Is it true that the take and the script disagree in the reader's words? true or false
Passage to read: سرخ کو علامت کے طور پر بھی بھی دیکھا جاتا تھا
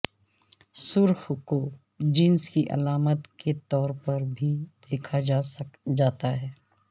true